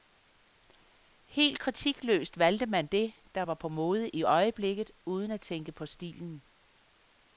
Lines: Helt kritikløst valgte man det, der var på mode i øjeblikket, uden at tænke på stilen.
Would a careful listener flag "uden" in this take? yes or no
no